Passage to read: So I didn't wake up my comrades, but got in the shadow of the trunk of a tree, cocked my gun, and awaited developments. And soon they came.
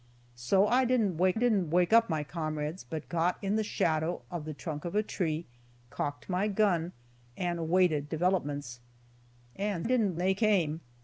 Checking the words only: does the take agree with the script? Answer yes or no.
no